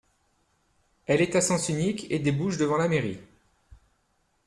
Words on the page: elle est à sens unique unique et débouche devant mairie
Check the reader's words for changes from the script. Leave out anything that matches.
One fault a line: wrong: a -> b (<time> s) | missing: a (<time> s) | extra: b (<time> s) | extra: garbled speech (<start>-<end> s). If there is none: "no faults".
missing: unique (2.1 s)
extra: la (2.8 s)